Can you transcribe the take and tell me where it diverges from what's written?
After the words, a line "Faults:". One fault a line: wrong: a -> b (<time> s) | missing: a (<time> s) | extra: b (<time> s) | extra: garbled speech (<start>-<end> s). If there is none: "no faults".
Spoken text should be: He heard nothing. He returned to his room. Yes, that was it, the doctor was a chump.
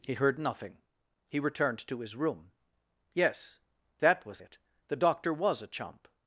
He heard nothing. He returned to his room. Yes, that was it, the doctor was a chump.
Faults:
no faults